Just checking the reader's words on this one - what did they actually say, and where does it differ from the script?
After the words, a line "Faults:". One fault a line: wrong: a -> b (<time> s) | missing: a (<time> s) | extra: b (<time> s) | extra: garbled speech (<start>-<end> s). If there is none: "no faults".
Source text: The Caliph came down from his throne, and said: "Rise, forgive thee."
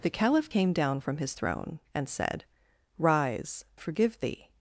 The Caliph came down from his throne, and said: "Rise, forgive thee."
Faults:
no faults